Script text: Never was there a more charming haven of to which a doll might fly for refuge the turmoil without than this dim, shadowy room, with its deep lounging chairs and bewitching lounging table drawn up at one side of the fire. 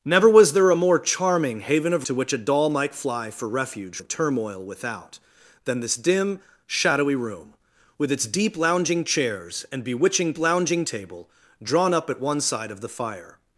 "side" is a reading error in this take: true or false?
false